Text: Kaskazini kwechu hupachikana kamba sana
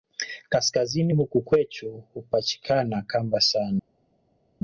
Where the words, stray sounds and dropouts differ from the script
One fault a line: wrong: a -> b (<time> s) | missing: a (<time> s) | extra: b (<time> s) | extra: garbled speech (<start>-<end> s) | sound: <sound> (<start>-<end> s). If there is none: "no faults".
extra: huku (1.1 s)